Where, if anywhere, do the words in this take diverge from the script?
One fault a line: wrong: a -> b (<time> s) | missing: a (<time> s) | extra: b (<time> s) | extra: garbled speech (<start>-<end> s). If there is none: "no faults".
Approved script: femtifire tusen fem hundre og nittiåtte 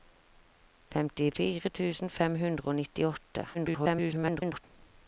extra: garbled speech (3.5-4.6 s)